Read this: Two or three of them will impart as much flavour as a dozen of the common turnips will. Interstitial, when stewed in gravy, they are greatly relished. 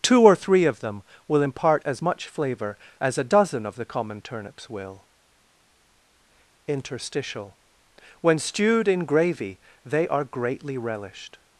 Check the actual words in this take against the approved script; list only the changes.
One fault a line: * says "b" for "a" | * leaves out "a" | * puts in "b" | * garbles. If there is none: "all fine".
all fine